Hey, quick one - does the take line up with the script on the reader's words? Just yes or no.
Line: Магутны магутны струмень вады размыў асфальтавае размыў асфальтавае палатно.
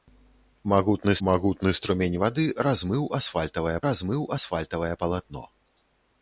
yes